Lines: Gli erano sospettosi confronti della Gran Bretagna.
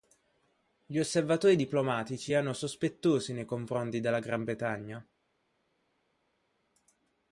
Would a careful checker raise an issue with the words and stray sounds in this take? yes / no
yes